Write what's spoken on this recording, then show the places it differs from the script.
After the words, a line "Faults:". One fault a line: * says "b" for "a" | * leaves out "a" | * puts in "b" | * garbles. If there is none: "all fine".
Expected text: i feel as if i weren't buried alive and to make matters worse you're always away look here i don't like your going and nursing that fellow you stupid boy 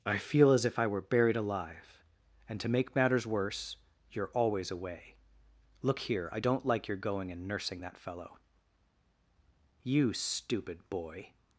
i feel as if i were buried alive and to make matters worse you're always away look here i don't like your going and nursing that fellow you stupid boy
Faults:
* says "were" for "weren't"